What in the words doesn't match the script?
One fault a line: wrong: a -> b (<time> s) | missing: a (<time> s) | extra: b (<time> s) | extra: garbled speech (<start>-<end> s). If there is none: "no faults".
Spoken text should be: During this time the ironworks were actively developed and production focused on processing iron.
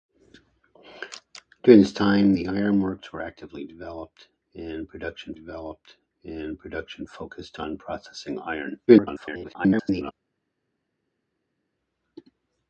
extra: developed and production (5.3 s)
extra: garbled speech (8.9-10.1 s)